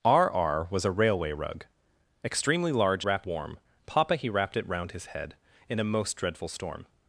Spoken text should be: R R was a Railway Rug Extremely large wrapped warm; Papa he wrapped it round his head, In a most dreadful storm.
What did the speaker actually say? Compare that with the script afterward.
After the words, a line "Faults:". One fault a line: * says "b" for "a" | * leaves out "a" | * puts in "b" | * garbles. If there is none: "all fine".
R R was a Railway Rug Extremely large wrapped warm; Papa he wrapped it round his head, In a most dreadful storm.
Faults:
all fine